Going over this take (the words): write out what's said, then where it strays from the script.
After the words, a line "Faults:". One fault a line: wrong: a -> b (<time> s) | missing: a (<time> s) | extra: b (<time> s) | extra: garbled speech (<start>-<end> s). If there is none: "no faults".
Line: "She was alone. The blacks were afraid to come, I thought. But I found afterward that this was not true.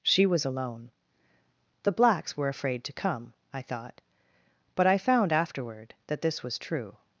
"She was alone. The blacks were afraid to come, I thought. But I found afterward that this was true.
Faults:
missing: not (6.6 s)